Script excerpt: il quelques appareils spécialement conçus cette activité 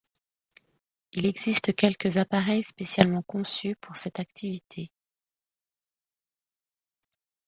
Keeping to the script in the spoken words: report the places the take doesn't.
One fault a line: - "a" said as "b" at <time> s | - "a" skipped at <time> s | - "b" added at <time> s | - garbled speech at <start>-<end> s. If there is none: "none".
- "existe" added at 1.3 s
- "pour" added at 3.8 s